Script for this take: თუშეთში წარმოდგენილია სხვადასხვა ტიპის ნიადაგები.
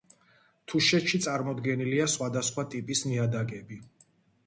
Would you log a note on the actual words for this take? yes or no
no